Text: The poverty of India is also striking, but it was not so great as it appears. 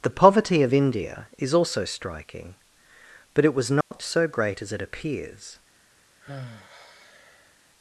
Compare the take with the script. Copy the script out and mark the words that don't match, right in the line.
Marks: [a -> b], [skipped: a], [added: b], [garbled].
The poverty of India is also striking, but it was not so great as it appears.